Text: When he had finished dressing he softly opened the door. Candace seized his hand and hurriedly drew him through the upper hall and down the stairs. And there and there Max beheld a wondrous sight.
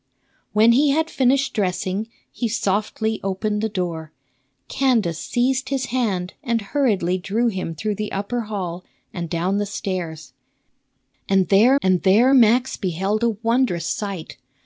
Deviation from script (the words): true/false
false